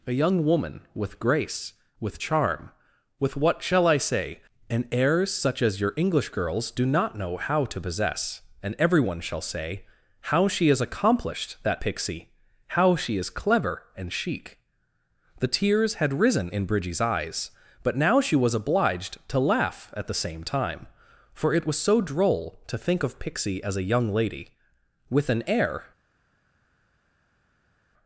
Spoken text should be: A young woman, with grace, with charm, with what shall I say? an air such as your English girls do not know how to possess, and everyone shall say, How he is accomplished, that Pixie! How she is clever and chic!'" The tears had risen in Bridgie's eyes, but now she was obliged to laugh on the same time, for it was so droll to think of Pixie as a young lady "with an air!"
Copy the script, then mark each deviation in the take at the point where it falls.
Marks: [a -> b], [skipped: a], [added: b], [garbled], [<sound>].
A young woman, with grace, with charm, with what shall I say? an air such as your English girls do not know how to possess, and everyone shall say, How [he -> she] is accomplished, that Pixie! How she is clever and chic!'" The tears had risen in Bridgie's eyes, but now she was obliged to laugh [on -> at] the same time, for it was so droll to think of Pixie as a young lady "with an air!"